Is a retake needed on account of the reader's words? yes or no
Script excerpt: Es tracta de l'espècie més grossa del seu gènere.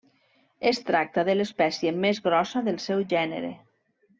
no